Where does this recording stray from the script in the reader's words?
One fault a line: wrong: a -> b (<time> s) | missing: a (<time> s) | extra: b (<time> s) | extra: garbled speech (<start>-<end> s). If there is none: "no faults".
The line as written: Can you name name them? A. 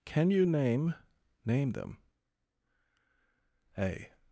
no faults